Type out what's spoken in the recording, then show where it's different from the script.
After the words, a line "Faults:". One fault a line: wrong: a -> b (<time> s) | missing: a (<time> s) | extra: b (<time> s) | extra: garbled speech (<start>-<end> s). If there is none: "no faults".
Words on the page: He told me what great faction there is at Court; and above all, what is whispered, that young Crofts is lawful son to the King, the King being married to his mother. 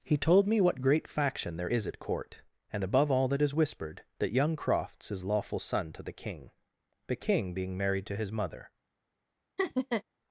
He told me what great faction there is at Court; and above all, that is whispered, that young Crofts is lawful son to the King, the King being married to his mother.
Faults:
wrong: what -> that (3.3 s)